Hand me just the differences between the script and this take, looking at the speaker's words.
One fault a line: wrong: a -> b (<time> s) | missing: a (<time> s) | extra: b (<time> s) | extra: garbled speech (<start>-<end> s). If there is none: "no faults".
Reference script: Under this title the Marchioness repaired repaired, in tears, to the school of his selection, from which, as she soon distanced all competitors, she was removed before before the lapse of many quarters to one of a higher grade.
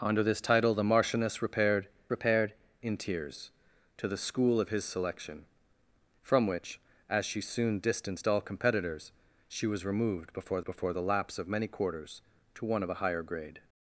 no faults